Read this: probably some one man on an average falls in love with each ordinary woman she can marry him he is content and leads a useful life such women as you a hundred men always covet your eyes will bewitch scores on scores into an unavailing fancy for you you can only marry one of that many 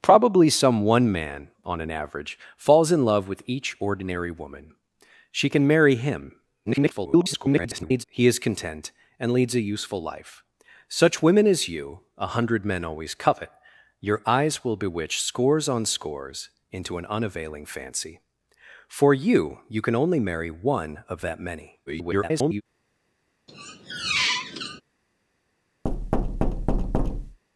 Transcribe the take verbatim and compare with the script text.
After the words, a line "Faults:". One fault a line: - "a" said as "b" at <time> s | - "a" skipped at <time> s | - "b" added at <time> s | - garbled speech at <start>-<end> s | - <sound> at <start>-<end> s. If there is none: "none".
probably some one man on an average falls in love with each ordinary woman she can marry him [garbled] he is content and leads a useful life such women as you a hundred men always covet your eyes will bewitch scores on scores into an unavailing fancy for you you can only marry one of that many [garbled]
Faults:
- garbled speech at 6.7-8.0 s
- garbled speech at 21.9-22.6 s
- squeak at 23.5-24.8 s
- thud at 25.8-27.4 s